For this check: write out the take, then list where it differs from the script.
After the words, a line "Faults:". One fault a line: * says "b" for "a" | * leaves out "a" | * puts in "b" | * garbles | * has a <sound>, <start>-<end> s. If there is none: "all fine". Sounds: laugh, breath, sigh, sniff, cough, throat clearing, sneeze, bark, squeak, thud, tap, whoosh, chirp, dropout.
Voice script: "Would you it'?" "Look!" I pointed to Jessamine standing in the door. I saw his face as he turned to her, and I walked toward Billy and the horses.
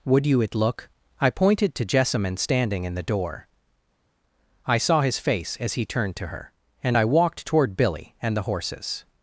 "Would you it'?" "Look!" I pointed to Jessamine standing in the door. I saw his face as he turned to her, and I walked toward Billy and the horses.
Faults:
all fine